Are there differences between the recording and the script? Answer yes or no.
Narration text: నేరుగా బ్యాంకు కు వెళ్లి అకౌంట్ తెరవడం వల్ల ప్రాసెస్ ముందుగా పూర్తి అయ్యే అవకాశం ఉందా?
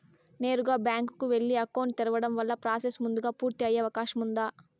no